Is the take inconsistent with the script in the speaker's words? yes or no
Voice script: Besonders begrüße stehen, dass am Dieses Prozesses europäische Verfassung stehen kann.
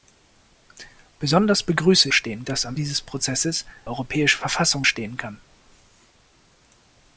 no